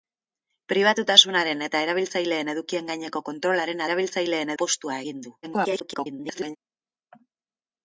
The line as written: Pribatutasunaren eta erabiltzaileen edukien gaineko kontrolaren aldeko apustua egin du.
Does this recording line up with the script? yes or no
no